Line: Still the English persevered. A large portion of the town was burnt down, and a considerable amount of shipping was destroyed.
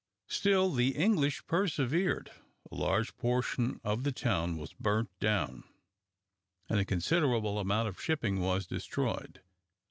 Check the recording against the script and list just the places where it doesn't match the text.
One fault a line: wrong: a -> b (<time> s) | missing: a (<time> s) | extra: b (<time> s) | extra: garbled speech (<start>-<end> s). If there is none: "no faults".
no faults